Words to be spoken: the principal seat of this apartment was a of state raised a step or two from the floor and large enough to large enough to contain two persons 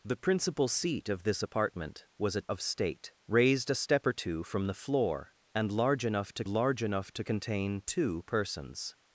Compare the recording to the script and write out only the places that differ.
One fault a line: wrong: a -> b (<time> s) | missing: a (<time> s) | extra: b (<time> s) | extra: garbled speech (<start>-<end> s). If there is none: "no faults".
no faults